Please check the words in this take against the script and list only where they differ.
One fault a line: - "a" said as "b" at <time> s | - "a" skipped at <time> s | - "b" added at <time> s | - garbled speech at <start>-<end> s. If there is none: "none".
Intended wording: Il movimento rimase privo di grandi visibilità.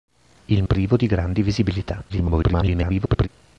- "movimento rimase" skipped at 0.6 s
- garbled speech at 2.1-3.3 s